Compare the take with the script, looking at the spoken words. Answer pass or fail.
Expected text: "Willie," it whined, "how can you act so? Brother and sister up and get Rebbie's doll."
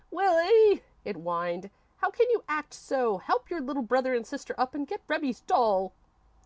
fail